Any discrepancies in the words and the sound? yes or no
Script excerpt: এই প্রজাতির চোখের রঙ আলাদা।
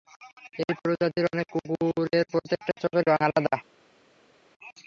yes